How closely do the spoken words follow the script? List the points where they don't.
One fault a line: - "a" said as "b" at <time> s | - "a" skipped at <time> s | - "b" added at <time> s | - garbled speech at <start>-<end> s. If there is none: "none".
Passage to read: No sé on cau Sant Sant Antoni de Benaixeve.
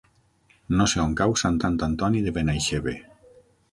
none